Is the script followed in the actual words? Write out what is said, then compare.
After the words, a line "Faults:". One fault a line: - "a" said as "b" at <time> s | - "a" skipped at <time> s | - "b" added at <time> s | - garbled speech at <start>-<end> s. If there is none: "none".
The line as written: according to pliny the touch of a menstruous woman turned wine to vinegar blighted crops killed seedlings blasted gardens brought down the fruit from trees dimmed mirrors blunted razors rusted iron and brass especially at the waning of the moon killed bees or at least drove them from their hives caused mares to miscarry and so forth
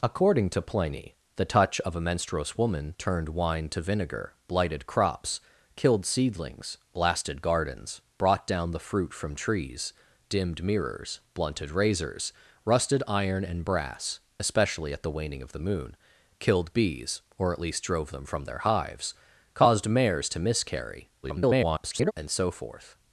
according to pliny the touch of a menstruous woman turned wine to vinegar blighted crops killed seedlings blasted gardens brought down the fruit from trees dimmed mirrors blunted razors rusted iron and brass especially at the waning of the moon killed bees or at least drove them from their hives caused mares to miscarry [garbled] and so forth
Faults:
- garbled speech at 21.2-22.1 s